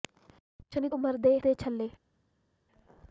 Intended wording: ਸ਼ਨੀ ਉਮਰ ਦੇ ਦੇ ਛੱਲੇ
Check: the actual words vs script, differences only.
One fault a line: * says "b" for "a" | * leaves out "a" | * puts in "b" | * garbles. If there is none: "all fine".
all fine